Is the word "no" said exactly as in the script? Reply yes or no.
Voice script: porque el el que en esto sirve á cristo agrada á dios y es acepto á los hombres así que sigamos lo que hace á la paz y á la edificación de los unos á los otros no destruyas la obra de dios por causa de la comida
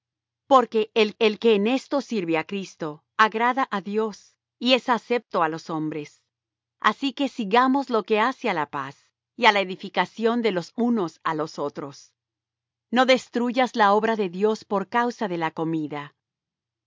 yes